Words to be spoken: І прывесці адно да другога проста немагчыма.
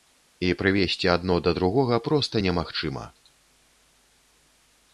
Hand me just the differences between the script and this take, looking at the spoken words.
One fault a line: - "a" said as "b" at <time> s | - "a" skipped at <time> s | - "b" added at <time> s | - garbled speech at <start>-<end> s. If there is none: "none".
none